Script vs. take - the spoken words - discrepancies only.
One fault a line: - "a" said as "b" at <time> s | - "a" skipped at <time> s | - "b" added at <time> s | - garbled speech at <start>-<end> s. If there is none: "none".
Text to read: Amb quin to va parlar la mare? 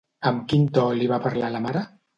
- "li" added at 1.0 s